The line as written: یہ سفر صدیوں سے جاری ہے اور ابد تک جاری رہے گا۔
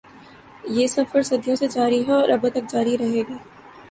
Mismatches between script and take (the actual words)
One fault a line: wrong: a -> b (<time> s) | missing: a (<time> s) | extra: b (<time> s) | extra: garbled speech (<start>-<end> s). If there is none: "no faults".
no faults